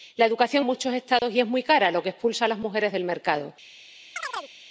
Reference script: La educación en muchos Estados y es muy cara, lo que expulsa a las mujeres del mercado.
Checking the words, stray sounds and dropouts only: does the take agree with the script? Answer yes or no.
no